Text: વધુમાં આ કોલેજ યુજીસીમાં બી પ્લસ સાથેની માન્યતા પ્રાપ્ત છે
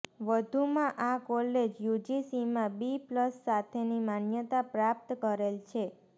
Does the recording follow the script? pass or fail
fail